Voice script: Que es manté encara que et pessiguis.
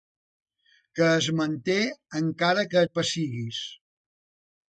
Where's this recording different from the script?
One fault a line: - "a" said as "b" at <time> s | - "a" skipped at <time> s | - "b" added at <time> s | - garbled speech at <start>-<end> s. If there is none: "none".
none